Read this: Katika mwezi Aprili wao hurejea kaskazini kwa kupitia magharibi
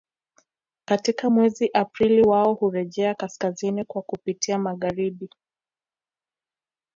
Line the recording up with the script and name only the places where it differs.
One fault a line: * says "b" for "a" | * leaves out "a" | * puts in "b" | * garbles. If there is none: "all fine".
all fine